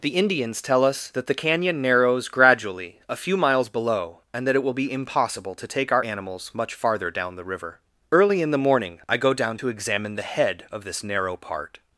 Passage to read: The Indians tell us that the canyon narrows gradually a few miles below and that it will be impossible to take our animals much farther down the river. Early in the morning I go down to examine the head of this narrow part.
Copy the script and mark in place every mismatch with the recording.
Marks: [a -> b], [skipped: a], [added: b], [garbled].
The Indians tell us that the canyon narrows gradually a few miles below and that it will be impossible to take our animals much farther down the river. Early in the morning I go down to examine the head of this narrow part.